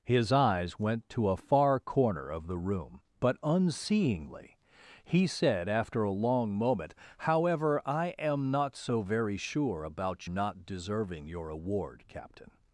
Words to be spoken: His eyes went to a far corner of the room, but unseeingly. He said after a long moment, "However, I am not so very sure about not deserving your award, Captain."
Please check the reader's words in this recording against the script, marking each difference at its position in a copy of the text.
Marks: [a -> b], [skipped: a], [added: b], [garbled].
His eyes went to a far corner of the room, but unseeingly. He said after a long moment, "However, I am not so very sure about not deserving your award, Captain."